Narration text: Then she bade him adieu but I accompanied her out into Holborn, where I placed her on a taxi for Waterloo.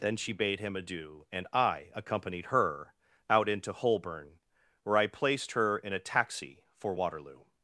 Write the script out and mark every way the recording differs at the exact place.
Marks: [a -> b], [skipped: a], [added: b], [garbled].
Then she bade him adieu [but -> and] I accompanied her out into Holborn, where I placed her [on -> in] a taxi for Waterloo.